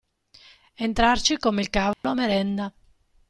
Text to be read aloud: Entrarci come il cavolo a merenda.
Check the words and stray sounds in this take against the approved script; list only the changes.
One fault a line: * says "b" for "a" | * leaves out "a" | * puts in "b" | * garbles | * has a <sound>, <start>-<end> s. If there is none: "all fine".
* has a dropout, 1.9-2.0 s